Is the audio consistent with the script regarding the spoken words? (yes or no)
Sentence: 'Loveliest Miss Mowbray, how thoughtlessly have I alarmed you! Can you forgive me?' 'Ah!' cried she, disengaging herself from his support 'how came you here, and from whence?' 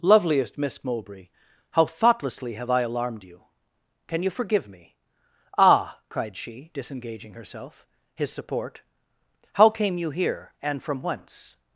no